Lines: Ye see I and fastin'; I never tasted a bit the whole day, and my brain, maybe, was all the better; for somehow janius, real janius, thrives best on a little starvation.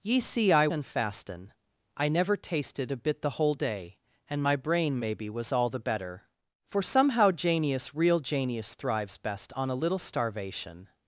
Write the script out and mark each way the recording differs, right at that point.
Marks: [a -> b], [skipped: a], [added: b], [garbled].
Ye see I and fastin'; I never tasted a bit the whole day, and my brain, maybe, was all the better; for somehow janius, real janius, thrives best on a little starvation.